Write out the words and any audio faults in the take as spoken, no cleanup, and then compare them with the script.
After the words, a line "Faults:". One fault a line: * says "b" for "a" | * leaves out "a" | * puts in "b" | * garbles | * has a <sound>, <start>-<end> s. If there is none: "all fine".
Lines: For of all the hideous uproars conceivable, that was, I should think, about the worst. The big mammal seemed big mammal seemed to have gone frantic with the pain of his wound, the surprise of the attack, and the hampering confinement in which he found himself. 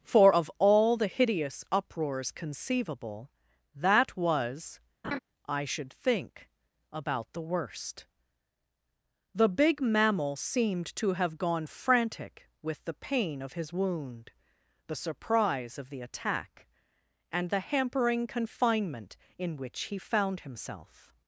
For of all the hideous uproars conceivable, that was, I should think, about the worst. The big mammal seemed to have gone frantic with the pain of his wound, the surprise of the attack, and the hampering confinement in which he found himself.
Faults:
* has a laugh, 5.0-5.2 s
* leaves out "big mammal seemed"